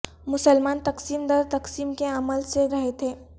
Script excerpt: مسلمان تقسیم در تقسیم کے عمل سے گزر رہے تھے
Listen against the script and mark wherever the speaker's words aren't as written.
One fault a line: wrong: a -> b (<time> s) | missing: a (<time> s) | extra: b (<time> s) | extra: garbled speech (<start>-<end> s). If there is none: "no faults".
missing: گزر (2.7 s)